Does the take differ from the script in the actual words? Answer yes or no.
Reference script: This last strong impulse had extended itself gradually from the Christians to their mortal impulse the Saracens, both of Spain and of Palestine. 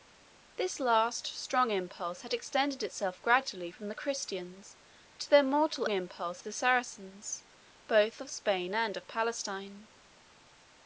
no